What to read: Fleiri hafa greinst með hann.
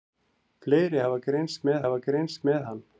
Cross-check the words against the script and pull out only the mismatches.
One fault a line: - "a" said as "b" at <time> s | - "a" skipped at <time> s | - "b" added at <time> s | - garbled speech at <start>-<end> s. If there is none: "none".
- "hafa greinst með" added at 1.8 s